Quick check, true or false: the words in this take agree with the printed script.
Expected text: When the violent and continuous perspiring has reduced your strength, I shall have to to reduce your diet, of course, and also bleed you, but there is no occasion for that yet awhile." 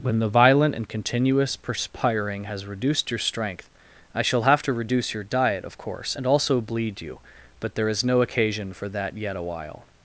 false